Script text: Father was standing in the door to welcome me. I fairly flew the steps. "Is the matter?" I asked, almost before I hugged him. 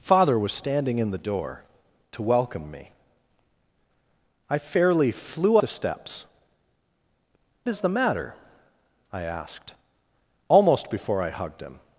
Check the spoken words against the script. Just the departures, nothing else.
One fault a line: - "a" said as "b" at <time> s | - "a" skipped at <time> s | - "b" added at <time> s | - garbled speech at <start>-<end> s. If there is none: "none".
none